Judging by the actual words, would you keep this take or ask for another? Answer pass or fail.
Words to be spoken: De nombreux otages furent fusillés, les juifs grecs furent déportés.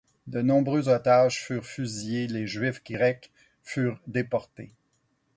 pass